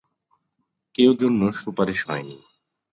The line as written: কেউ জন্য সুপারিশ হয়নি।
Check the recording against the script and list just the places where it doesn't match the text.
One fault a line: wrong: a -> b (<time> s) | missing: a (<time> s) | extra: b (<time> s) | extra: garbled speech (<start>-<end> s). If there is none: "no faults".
no faults